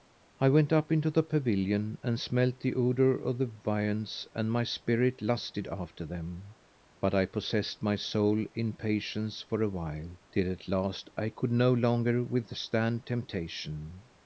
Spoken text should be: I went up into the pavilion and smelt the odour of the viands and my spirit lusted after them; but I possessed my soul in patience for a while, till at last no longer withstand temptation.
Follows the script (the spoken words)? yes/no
no